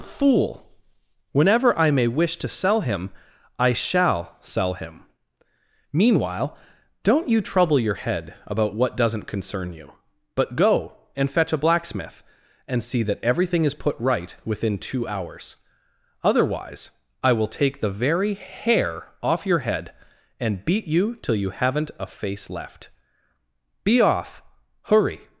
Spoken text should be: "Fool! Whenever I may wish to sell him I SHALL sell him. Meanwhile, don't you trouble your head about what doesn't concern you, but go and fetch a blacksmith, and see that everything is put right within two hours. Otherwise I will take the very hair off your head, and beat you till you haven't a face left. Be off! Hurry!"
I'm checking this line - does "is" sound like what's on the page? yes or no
yes